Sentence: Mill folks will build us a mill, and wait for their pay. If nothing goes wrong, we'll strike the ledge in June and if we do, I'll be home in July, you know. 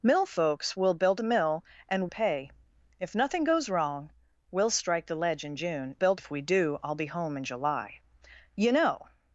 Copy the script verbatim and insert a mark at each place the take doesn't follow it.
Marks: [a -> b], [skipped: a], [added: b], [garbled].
Mill folks will build [skipped: us] a mill, and [skipped: wait for their] pay. If nothing goes wrong, we'll strike the ledge in June [and -> build] if we do, I'll be home in July, you know.